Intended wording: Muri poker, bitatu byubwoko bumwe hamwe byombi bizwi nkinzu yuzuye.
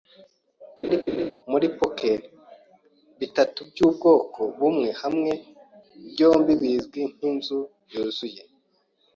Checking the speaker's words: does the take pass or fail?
pass